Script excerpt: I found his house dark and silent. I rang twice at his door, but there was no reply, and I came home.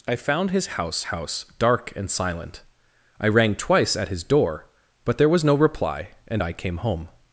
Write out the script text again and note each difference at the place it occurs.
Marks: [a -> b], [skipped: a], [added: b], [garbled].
I found his house [added: house] dark and silent. I rang twice at his door, but there was no reply, and I came home.